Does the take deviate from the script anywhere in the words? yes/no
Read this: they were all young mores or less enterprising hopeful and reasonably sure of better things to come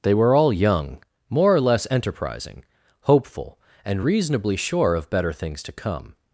yes